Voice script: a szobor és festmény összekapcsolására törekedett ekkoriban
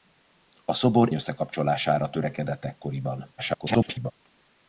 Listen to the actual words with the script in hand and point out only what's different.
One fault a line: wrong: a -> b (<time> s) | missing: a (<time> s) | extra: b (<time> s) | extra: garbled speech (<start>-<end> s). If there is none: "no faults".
missing: és festmény (1.1 s)
extra: garbled speech (3.4-4.1 s)